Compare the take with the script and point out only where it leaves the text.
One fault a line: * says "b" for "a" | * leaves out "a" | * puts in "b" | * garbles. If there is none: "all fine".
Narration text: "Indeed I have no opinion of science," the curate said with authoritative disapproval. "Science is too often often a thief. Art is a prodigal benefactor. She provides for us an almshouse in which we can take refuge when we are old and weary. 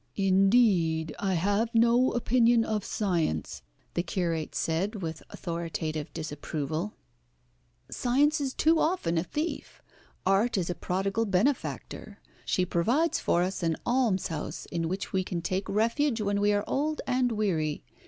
* leaves out "often"